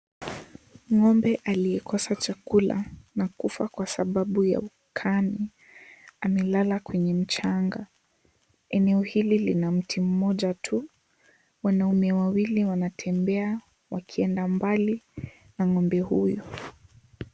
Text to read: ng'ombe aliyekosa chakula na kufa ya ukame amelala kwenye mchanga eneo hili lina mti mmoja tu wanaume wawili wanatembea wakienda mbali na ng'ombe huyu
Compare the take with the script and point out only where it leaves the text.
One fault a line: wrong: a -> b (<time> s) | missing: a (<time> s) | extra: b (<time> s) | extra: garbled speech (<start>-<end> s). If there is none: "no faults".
extra: kwa sababu (3.7 s)